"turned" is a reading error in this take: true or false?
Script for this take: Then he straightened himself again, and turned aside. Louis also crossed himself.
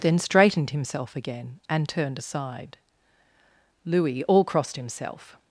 false